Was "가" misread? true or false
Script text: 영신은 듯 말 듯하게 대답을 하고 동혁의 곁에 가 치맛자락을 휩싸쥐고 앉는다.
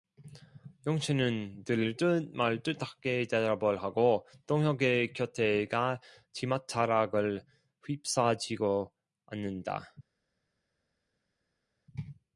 false